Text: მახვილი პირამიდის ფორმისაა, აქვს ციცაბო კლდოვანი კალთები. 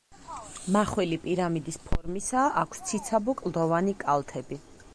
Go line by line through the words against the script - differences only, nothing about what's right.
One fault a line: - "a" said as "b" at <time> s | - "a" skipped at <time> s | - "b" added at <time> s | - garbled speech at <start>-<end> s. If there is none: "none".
none